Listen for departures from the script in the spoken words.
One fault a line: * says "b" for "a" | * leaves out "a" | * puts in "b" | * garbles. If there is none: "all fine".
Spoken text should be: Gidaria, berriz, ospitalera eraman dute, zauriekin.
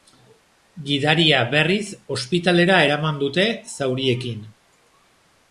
all fine